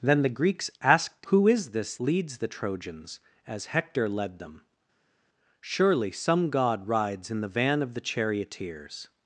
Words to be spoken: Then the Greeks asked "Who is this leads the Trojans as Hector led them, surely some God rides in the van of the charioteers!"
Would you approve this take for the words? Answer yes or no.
yes